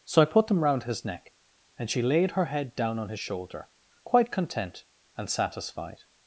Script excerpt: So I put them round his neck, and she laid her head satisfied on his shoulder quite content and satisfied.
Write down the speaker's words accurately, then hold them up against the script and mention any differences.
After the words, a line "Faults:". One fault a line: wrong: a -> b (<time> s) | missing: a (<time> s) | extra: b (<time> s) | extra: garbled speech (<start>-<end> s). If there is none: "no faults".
So I put them round his neck, and she laid her head down on his shoulder quite content and satisfied.
Faults:
wrong: satisfied -> down (2.8 s)